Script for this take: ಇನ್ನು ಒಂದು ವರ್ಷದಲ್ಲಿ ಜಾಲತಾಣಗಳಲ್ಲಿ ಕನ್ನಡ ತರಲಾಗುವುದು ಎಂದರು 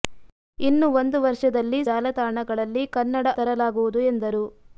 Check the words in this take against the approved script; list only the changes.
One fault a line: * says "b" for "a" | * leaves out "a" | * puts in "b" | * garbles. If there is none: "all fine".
all fine